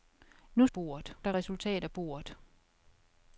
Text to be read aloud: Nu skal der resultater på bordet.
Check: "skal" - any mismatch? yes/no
yes